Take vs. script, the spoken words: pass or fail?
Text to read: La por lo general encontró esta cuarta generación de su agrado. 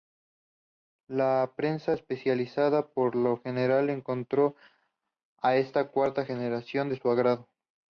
fail